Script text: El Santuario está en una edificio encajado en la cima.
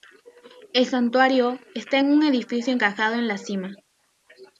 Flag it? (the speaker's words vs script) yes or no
yes